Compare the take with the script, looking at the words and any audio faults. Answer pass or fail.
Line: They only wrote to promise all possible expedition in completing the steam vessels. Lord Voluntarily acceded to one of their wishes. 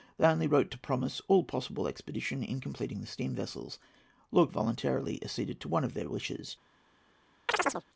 fail